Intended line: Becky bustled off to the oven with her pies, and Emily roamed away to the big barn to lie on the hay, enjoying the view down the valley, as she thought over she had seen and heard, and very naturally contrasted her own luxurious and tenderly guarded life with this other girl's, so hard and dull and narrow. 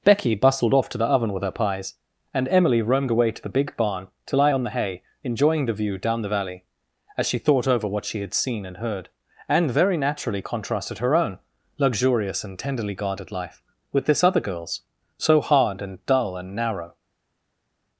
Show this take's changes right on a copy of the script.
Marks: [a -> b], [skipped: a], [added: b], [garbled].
Becky bustled off to the oven with her pies, and Emily roamed away to the big barn to lie on the hay, enjoying the view down the valley, as she thought over [added: what] she had seen and heard, and very naturally contrasted her own luxurious and tenderly guarded life with this other girl's, so hard and dull and narrow.